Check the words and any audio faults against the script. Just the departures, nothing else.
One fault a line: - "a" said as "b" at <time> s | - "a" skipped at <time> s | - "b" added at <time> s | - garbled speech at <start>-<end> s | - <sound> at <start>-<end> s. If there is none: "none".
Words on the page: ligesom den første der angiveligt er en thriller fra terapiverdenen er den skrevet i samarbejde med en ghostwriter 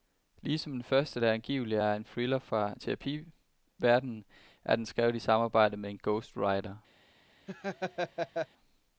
- laugh at 7.5-8.5 s